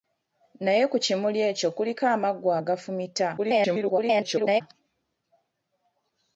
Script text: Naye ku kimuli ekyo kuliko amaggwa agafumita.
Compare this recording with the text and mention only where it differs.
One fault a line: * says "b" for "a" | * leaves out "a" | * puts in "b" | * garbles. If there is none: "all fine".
* garbles